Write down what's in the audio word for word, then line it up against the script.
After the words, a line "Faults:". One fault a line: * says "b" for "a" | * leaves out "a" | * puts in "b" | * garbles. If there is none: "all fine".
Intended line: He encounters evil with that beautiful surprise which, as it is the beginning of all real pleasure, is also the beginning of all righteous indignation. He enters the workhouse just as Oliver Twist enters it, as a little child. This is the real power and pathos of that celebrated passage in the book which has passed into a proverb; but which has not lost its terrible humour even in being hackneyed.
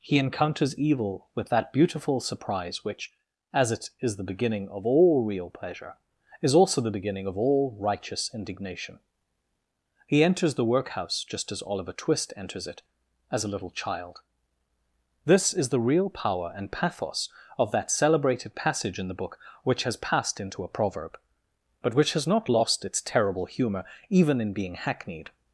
He encounters evil with that beautiful surprise which, as it is the beginning of all real pleasure, is also the beginning of all righteous indignation. He enters the workhouse just as Oliver Twist enters it, as a little child. This is the real power and pathos of that celebrated passage in the book which has passed into a proverb; but which has not lost its terrible humour even in being hackneyed.
Faults:
all fine